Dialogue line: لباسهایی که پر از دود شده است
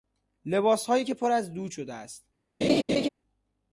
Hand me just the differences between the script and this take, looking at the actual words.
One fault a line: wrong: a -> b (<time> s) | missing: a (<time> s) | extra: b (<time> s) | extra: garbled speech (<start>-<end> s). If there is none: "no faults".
no faults